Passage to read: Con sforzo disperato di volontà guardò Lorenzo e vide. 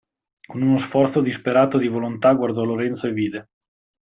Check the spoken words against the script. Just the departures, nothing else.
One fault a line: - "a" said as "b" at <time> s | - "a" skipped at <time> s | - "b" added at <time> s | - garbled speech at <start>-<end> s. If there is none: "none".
- "uno" added at 0.6 s